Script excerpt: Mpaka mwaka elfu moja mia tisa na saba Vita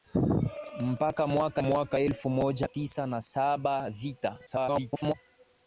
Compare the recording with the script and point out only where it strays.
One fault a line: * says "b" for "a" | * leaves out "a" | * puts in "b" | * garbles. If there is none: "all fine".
* puts in "mwaka"
* leaves out "mia"
* garbles